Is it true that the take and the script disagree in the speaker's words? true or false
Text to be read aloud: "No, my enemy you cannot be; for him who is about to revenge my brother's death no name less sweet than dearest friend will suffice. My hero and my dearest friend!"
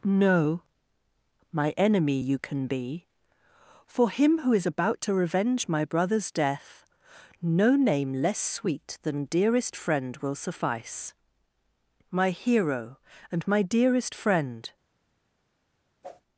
true